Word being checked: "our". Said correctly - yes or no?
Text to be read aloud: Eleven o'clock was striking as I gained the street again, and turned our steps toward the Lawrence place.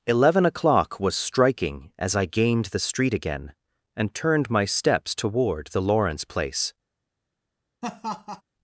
no